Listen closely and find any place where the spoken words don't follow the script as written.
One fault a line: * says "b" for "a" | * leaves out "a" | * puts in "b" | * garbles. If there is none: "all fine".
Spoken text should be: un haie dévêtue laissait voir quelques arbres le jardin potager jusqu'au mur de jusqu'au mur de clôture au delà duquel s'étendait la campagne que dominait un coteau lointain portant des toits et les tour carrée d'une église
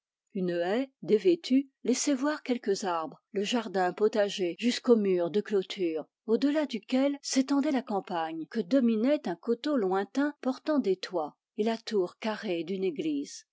* says "une" for "un"
* leaves out "jusqu'au mur de"
* says "la" for "les"